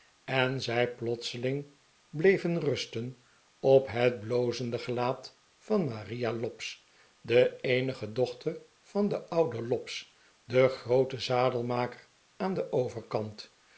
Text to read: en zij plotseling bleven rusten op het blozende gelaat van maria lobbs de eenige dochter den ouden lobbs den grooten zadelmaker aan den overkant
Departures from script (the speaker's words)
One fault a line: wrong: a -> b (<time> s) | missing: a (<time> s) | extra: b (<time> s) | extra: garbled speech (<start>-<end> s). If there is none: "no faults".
extra: van (8.8 s)